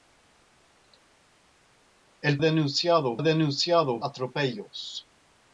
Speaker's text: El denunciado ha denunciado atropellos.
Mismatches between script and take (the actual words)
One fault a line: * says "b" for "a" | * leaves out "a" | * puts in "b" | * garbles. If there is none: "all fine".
all fine